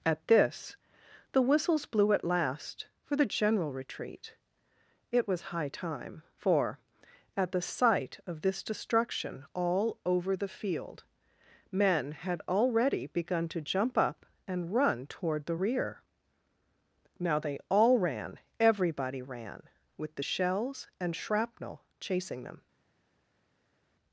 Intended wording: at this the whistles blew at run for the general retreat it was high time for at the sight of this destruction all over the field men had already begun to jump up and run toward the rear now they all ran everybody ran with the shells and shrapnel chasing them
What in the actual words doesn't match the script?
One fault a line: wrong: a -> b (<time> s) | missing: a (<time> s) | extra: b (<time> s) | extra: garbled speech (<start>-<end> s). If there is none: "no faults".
wrong: run -> last (2.2 s)